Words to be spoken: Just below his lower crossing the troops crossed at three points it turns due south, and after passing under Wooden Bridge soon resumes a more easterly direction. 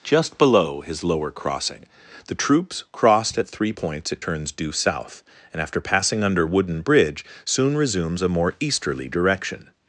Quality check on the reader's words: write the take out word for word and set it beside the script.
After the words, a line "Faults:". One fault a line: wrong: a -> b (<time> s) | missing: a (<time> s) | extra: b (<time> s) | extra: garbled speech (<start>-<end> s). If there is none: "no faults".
Just below his lower crossing the troops crossed at three points it turns due south, and after passing under Wooden Bridge soon resumes a more easterly direction.
Faults:
no faults